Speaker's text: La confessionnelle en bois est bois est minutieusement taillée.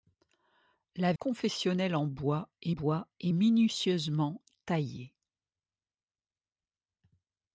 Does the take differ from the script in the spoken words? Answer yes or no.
no